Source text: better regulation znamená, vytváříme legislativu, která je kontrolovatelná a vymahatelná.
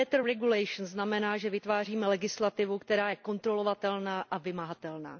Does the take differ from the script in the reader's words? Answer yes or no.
yes